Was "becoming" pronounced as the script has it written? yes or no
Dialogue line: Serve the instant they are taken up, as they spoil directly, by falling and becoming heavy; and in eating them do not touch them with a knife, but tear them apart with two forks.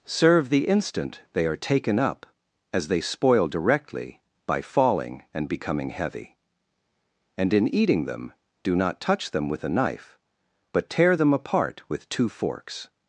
yes